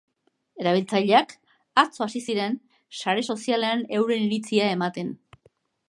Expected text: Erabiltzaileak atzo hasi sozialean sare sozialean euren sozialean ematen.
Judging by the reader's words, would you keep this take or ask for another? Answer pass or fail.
fail